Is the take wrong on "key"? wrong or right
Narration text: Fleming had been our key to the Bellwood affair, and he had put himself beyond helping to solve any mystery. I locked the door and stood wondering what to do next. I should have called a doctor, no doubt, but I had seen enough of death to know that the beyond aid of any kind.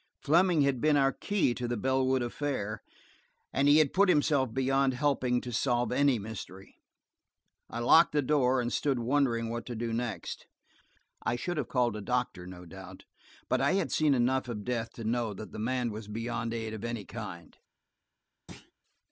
right